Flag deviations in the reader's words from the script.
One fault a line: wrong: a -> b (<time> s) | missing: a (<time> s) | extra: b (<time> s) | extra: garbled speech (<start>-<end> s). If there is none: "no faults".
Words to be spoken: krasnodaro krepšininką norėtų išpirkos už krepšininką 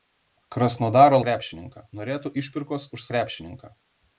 no faults